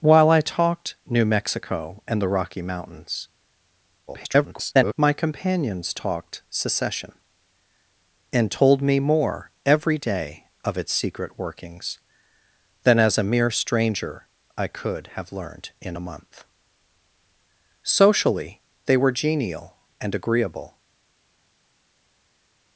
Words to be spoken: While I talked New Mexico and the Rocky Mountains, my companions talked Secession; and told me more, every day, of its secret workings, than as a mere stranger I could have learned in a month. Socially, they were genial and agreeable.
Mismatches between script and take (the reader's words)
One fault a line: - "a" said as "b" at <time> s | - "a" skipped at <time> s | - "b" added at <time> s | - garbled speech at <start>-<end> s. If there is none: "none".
- garbled speech at 4.1-4.9 s